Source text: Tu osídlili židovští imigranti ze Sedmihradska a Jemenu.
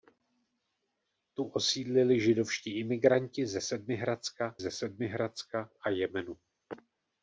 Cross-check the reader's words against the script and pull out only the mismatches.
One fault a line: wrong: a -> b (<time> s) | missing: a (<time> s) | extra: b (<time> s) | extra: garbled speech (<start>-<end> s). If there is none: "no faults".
extra: ze Sedmihradska (4.6 s)